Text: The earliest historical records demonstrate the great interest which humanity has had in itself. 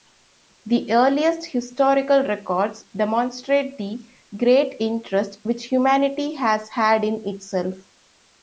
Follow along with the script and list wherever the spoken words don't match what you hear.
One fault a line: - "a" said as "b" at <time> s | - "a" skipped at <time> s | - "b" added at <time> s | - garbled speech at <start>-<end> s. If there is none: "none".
none